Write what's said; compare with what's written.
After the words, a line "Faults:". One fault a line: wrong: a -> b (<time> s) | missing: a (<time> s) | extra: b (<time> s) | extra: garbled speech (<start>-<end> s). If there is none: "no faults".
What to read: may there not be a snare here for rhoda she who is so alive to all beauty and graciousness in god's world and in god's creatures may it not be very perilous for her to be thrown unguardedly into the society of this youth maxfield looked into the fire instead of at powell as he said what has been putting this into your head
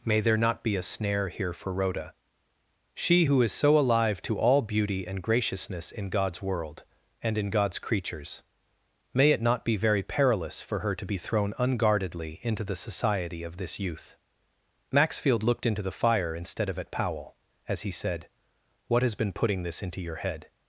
may there not be a snare here for rhoda she who is so alive to all beauty and graciousness in god's world and in god's creatures may it not be very perilous for her to be thrown unguardedly into the society of this youth maxfield looked into the fire instead of at powell as he said what has been putting this into your head
Faults:
no faults